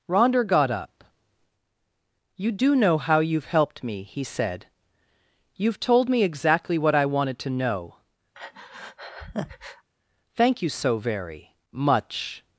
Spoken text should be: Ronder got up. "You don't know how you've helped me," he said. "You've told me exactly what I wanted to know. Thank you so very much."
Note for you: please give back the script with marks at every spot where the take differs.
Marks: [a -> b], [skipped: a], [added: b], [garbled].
Ronder got up. "You [don't -> do] know how you've helped me," he said. "You've told me exactly what I wanted to know. Thank you so very much."